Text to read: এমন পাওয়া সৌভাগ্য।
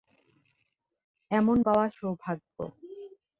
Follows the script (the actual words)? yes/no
yes